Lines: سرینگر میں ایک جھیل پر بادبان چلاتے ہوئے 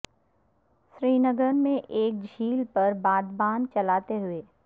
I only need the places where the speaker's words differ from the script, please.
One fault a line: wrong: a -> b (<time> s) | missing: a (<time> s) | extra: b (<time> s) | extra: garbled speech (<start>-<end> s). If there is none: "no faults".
no faults